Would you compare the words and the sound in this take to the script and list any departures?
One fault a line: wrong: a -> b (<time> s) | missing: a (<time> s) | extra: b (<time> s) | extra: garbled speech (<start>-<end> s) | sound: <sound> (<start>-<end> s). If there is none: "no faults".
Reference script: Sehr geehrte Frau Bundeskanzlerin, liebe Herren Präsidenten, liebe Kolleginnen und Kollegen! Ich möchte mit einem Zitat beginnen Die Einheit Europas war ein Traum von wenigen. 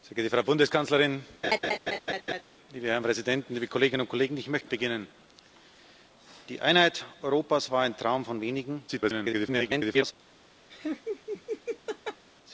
sound: laugh (1.4-2.4 s)
missing: mit einem Zitat (4.7 s)
extra: garbled speech (8.9-10.1 s)
sound: laugh (10.7-12.2 s)